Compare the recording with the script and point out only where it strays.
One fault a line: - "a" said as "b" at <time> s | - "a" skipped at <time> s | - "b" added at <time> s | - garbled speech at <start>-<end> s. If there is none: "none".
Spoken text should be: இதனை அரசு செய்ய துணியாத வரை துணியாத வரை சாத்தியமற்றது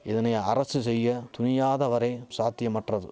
- "துணியாத வரை" skipped at 2.1 s